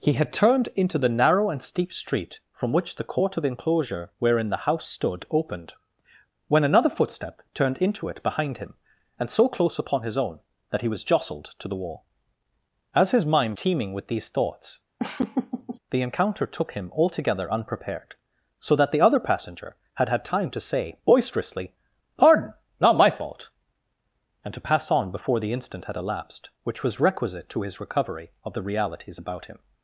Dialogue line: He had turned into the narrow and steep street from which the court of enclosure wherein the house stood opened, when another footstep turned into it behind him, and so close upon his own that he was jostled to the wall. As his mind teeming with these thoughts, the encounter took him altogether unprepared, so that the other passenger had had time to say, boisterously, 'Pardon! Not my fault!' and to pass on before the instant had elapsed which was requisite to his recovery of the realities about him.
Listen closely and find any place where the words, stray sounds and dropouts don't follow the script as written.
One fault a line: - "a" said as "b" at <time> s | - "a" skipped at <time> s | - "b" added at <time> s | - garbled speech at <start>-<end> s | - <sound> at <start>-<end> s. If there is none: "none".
- laugh at 15.0-15.8 s